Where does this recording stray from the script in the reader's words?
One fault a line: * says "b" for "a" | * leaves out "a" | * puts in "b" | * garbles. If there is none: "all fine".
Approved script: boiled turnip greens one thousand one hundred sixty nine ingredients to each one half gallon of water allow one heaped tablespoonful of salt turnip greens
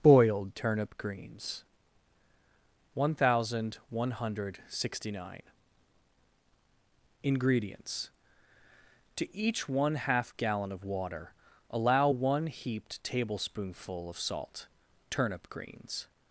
all fine